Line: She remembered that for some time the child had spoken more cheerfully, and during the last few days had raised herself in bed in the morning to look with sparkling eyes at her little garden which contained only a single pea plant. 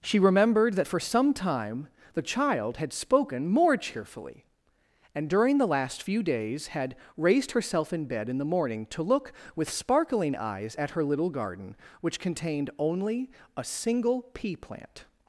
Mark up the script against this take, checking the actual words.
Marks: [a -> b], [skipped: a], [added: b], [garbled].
She remembered that for some time the child had spoken more cheerfully, and during the last few days had raised herself in bed in the morning to look with sparkling eyes at her little garden which contained only a single pea plant.